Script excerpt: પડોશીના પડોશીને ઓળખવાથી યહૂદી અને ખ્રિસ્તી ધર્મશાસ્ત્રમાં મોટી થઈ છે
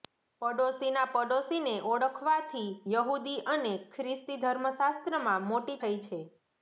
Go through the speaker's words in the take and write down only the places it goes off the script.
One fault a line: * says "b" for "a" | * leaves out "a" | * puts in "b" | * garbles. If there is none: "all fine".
all fine